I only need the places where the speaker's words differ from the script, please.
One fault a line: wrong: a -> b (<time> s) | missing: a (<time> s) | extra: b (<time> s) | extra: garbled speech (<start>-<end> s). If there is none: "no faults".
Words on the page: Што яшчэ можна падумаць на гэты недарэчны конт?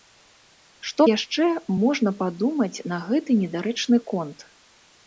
no faults